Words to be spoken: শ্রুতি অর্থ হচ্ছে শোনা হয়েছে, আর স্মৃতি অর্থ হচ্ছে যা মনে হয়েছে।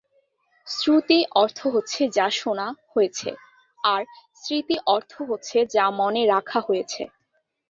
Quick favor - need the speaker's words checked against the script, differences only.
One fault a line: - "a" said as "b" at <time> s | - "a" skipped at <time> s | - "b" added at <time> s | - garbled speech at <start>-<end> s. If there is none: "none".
- "যা" added at 2.2 s
- "রাখা" added at 6.3 s